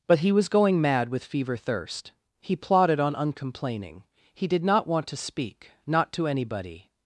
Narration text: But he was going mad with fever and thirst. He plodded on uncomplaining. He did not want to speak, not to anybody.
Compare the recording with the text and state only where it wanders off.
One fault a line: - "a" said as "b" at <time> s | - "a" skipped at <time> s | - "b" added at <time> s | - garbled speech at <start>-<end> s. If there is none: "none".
- "and" skipped at 1.6 s